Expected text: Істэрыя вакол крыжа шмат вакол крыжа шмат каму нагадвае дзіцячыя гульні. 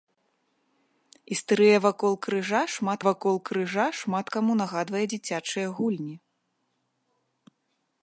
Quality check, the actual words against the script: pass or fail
pass